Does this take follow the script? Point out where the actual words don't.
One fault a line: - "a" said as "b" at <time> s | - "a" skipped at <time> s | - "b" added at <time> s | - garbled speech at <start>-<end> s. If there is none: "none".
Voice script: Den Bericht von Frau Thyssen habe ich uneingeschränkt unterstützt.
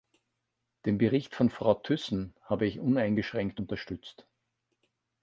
none